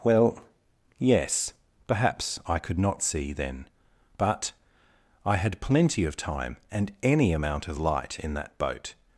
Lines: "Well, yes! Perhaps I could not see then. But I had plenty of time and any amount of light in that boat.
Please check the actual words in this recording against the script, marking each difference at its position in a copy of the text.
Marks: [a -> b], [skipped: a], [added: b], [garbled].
"Well, yes! Perhaps I could not see then. But I had plenty of time and any amount of light in that boat.